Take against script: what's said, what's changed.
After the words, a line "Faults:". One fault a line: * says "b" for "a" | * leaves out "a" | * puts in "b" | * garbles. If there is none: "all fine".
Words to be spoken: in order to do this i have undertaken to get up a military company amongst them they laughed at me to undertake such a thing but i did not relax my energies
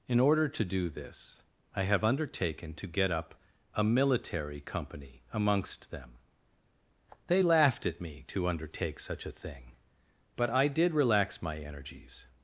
in order to do this i have undertaken to get up a military company amongst them they laughed at me to undertake such a thing but i did relax my energies
Faults:
* leaves out "not"